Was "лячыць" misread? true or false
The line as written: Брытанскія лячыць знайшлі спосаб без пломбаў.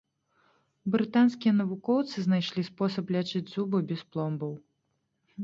true